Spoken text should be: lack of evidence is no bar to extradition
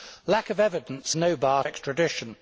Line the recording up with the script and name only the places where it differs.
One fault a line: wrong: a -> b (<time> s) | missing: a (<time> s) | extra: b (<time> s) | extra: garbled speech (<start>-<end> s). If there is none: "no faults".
missing: is (1.1 s)
missing: to (1.6 s)